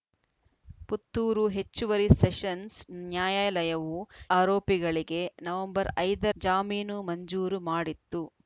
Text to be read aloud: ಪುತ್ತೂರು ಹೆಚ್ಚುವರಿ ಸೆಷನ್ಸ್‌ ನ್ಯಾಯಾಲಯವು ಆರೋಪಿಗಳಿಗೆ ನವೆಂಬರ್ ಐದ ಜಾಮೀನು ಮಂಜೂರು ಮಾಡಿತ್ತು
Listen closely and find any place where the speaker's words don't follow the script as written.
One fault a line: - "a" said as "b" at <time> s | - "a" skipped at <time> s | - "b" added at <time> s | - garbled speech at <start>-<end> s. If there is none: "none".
none